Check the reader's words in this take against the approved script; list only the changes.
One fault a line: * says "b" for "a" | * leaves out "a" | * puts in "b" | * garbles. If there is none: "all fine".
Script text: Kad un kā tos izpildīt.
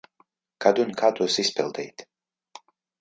all fine